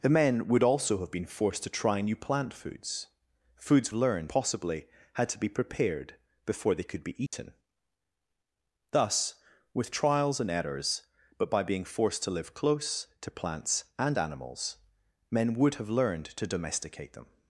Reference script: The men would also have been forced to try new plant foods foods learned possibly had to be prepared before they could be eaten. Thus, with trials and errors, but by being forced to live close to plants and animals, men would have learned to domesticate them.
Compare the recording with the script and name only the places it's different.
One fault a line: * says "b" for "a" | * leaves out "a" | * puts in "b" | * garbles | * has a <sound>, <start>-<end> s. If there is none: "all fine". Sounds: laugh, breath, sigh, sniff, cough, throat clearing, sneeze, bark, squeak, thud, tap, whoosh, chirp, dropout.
* has a dropout, 7.3-7.3 s